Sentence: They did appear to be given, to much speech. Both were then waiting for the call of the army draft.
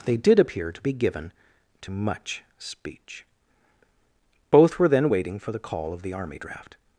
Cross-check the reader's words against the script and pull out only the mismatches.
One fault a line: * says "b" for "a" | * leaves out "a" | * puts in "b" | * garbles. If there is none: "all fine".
all fine